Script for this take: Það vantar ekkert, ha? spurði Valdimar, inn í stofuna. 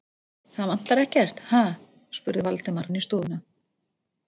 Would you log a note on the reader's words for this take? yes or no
no